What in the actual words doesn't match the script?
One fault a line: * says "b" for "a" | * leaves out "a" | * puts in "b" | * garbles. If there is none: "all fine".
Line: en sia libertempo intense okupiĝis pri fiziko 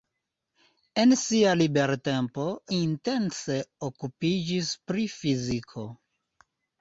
all fine